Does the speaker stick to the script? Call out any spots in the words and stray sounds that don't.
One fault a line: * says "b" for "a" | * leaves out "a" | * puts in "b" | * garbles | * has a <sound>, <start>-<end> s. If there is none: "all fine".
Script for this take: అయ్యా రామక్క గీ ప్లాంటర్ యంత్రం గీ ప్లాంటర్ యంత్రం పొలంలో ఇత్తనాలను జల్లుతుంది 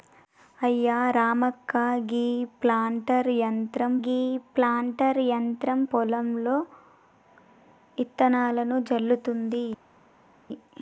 all fine